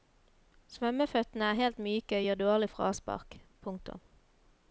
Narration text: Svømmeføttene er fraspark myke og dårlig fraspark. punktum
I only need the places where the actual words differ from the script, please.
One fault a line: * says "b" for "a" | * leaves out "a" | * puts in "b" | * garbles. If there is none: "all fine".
* says "helt" for "fraspark"
* puts in "gir"